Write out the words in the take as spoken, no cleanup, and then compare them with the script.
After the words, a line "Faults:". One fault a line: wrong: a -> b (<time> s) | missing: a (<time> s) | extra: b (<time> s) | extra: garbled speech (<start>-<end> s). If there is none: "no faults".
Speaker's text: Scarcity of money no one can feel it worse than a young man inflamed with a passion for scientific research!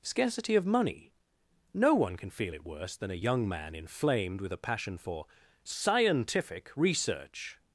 Scarcity of money no one can feel it worse than a young man inflamed with a passion for scientific research!
Faults:
no faults